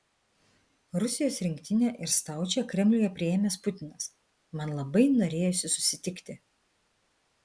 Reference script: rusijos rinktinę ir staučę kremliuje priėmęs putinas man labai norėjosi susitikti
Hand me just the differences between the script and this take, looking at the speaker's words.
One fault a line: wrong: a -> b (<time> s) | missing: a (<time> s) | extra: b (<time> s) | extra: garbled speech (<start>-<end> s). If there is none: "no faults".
no faults